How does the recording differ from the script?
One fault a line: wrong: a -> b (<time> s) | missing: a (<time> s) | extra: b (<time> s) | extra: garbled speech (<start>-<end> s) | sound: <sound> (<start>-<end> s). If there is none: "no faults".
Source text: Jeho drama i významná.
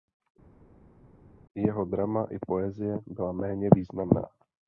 extra: poezie byla méně (2.5 s)